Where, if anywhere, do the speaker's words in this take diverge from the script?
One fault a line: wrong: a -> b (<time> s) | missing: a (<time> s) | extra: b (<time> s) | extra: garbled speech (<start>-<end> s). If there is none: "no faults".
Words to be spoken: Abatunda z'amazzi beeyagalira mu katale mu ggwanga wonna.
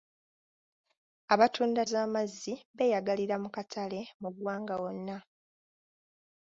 no faults